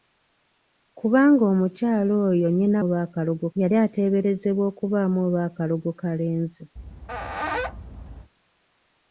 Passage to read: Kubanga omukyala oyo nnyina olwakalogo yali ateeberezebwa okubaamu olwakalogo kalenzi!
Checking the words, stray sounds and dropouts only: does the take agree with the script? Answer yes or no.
no